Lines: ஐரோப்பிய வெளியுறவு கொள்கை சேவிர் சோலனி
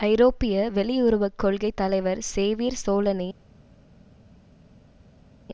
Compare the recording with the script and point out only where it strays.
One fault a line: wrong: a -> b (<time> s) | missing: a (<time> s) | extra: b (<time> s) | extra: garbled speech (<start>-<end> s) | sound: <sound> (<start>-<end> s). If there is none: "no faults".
extra: தலைவர் (1.7 s)